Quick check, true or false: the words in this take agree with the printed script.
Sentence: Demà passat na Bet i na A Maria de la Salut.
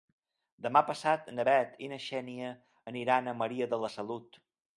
false